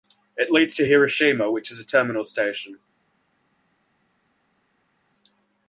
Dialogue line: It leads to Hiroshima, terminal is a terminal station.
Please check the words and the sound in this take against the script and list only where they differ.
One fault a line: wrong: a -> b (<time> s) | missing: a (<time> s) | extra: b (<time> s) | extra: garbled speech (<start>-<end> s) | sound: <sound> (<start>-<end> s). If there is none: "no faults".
wrong: terminal -> which (1.5 s)